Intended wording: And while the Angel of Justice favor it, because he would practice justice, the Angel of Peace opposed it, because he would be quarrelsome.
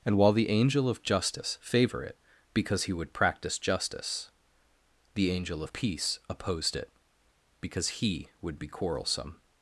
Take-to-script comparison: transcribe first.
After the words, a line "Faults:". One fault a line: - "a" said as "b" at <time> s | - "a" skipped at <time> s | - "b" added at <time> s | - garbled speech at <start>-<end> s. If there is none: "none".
And while the Angel of Justice favor it, because he would practice justice, the Angel of Peace opposed it, because he would be quarrelsome.
Faults:
none